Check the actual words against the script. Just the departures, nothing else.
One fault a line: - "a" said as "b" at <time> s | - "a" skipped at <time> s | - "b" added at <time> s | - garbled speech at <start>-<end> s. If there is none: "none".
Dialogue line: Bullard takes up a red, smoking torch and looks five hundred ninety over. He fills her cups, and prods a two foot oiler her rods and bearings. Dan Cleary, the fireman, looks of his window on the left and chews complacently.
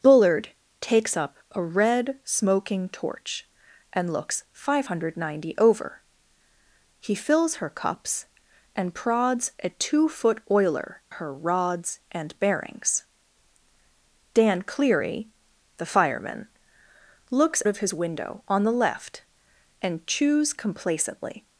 none